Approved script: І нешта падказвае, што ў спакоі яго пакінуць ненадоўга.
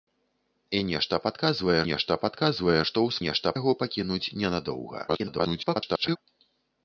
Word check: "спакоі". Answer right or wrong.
wrong